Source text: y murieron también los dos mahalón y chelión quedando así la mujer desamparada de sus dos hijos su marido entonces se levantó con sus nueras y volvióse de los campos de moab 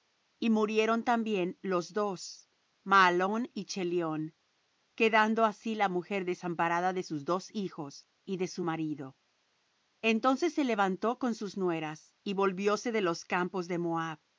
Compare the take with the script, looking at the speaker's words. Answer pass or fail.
fail